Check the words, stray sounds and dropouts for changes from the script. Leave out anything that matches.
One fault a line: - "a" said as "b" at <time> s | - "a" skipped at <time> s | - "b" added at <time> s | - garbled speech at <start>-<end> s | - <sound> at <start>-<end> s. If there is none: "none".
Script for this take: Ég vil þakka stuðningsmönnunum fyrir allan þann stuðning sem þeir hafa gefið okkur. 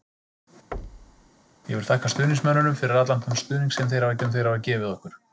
- thud at 0.7-1.3 s
- "sem þeir hafa" added at 4.2 s